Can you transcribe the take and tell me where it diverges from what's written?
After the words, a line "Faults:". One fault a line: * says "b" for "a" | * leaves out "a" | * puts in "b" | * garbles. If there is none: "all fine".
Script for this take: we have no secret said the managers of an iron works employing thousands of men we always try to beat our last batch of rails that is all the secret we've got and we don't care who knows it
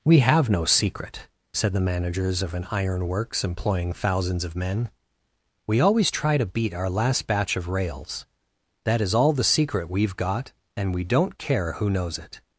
we have no secret said the managers of an iron works employing thousands of men we always try to beat our last batch of rails that is all the secret we've got and we don't care who knows it
Faults:
all fine